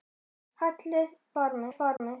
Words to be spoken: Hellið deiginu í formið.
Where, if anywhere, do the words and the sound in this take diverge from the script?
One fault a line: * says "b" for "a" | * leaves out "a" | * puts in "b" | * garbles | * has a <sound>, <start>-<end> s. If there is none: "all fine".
* says "formið" for "deiginu"
* has a dropout, 2.0-2.0 s